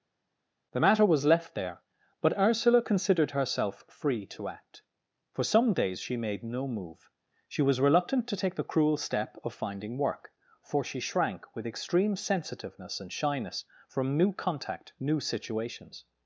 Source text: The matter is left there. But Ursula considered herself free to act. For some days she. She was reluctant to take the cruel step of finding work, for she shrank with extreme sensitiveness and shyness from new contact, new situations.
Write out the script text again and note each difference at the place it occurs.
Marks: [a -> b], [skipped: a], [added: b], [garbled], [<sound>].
The matter [is -> was] left there. But Ursula considered herself free to act. For some days she. [added: made no move] She was reluctant to take the cruel step of finding work, for she shrank with extreme sensitiveness and shyness from new contact, new situations.